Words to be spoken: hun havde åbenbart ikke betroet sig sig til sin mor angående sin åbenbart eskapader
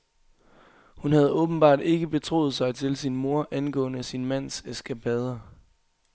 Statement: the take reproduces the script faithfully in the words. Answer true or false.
false